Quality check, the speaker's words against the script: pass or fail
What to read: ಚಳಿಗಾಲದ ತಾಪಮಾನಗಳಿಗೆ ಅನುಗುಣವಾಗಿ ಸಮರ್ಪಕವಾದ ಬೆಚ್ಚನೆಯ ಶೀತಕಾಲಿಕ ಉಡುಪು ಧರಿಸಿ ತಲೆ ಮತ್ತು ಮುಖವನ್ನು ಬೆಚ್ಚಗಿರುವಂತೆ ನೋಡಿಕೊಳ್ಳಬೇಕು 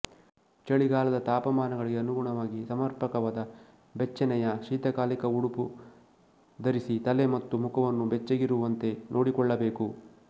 pass